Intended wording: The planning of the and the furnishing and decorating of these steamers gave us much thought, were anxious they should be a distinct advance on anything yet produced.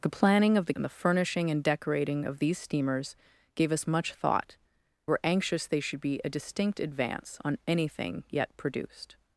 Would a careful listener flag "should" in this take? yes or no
no